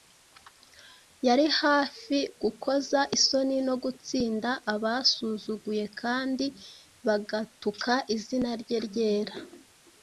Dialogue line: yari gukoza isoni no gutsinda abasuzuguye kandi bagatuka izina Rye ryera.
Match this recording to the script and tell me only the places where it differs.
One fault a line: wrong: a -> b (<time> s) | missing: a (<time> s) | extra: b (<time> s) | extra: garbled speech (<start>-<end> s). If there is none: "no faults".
extra: hafi (1.6 s)